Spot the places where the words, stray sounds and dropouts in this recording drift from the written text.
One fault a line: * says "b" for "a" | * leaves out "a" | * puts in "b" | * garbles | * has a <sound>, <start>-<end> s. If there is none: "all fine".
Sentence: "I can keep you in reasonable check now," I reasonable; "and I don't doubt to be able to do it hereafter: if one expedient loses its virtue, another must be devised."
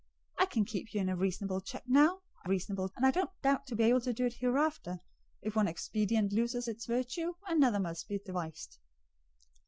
all fine